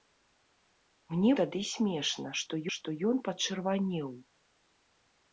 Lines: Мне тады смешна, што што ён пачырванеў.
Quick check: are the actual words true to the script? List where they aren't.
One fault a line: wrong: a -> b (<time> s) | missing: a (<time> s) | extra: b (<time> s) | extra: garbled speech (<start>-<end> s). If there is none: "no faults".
no faults